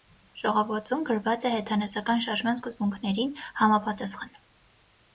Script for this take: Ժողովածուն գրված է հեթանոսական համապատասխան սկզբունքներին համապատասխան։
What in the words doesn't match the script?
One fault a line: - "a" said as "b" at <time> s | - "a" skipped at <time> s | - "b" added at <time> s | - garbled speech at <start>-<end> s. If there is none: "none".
- "համապատասխան" said as "շարժման" at 2.3 s